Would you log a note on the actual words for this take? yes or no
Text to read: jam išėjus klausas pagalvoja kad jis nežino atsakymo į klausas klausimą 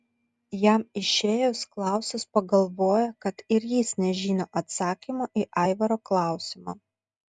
yes